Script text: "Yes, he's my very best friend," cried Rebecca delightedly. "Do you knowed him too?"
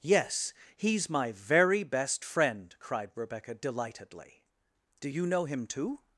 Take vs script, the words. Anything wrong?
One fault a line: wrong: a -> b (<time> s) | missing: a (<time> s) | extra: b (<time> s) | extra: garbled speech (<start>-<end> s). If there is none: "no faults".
wrong: knowed -> know (5.3 s)